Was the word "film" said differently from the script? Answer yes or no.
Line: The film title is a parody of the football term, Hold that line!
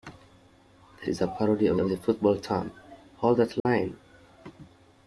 yes